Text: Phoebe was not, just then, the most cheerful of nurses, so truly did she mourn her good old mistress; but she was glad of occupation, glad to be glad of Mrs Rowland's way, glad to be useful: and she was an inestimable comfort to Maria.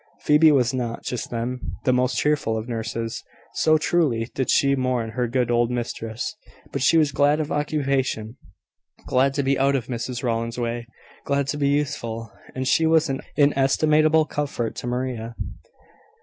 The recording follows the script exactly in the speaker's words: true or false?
false